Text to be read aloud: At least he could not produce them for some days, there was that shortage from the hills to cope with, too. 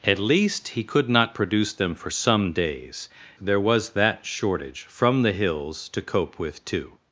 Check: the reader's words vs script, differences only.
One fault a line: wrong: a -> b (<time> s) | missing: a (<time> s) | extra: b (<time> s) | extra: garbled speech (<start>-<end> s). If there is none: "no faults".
no faults